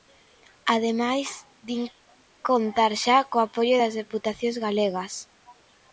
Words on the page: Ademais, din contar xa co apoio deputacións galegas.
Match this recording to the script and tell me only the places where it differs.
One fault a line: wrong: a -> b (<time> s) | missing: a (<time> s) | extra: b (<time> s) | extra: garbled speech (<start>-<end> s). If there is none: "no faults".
extra: das (3.8 s)